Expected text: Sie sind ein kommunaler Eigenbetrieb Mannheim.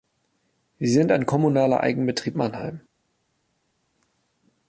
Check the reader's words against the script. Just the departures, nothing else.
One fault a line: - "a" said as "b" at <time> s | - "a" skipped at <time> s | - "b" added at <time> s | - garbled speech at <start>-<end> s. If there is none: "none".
none